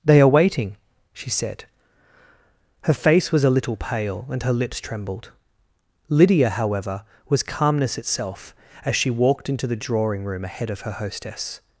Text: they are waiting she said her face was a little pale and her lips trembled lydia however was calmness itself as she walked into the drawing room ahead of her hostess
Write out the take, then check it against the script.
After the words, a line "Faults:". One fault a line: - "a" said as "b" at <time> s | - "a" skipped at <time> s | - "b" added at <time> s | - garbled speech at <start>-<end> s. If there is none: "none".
they are waiting she said her face was a little pale and her lips trembled lydia however was calmness itself as she walked into the drawing room ahead of her hostess
Faults:
none